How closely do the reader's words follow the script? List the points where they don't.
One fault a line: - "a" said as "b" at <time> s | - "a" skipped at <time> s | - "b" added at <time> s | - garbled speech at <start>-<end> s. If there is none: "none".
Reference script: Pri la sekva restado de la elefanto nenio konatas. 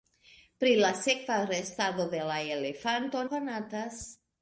- "nenio" skipped at 3.2 s